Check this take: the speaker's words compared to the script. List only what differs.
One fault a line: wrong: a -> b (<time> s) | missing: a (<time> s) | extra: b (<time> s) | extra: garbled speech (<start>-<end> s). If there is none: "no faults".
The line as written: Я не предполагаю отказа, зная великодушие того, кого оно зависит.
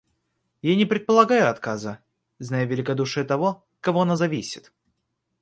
no faults